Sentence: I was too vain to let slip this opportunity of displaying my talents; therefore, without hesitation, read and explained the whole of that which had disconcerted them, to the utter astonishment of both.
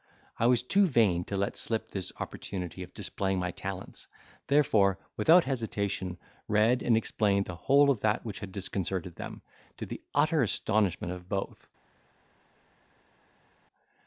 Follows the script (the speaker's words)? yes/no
yes